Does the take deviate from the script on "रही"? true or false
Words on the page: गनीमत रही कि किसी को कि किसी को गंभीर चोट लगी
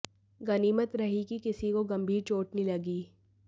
false